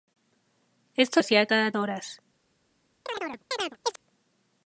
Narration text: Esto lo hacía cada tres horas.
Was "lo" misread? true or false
true